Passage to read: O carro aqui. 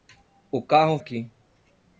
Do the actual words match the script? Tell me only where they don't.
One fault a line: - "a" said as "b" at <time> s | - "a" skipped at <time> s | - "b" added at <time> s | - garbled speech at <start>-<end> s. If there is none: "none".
none